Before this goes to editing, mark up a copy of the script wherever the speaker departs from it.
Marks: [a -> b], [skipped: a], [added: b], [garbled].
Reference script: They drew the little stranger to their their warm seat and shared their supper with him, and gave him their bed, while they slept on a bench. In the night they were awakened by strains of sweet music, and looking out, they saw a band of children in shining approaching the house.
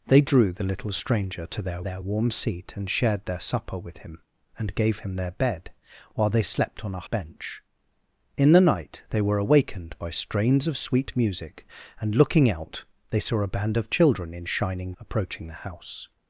They drew the little stranger to their their warm seat and shared their supper with him, and gave him their bed, while they slept on a bench. In the night they were awakened by strains of sweet music, and looking out, they saw a band of children in shining approaching the house.